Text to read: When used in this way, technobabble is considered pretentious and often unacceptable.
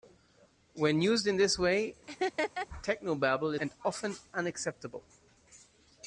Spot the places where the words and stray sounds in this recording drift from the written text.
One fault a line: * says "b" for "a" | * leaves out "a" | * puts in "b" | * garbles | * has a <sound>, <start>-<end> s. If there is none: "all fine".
* has a laugh, 2.1-2.7 s
* leaves out "is considered pretentious"